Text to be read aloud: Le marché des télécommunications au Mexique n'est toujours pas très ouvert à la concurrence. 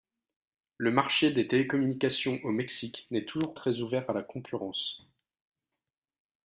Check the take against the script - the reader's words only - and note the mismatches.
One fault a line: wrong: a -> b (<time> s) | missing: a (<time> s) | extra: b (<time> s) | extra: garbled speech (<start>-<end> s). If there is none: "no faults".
missing: pas (3.5 s)